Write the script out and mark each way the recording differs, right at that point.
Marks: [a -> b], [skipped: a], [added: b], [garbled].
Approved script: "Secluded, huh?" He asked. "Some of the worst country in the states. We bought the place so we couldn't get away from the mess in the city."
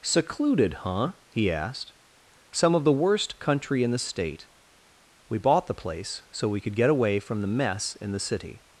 "Secluded, huh?" He asked. "Some of the worst country in the [states. -> state] We bought the place so we [couldn't -> could] get away from the mess in the city."